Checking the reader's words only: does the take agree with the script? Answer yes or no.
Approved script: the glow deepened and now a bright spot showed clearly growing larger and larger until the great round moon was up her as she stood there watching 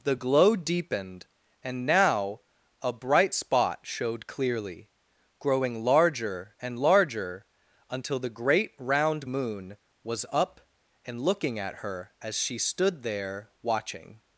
no